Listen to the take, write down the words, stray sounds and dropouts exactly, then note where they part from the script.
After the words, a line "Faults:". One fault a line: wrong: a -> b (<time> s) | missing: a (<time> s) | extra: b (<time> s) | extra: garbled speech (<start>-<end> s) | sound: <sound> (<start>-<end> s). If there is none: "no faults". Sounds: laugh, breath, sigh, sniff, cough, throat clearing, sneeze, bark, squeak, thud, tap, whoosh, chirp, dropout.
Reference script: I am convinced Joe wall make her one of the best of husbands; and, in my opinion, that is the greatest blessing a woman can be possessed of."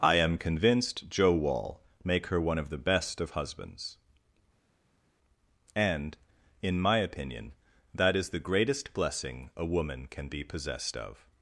I am convinced Joe wall make her one of the best of husbands; and, in my opinion, that is the greatest blessing a woman can be possessed of."
Faults:
no faults